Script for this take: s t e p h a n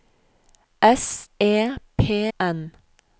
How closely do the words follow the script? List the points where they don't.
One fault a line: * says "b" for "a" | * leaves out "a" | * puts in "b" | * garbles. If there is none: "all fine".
* leaves out "t"
* leaves out "h a"